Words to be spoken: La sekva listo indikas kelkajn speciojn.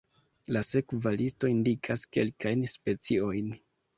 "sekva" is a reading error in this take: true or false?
false